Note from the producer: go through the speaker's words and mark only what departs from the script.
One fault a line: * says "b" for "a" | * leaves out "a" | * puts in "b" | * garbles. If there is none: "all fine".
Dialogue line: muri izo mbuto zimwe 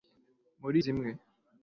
* leaves out "izo mbuto"